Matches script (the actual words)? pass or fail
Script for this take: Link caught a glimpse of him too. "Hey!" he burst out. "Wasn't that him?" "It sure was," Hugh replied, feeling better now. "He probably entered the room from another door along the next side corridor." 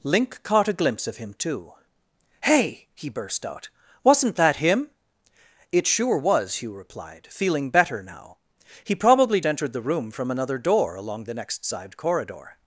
pass